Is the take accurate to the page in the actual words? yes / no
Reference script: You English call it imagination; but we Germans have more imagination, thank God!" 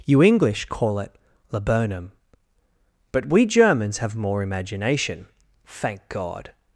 no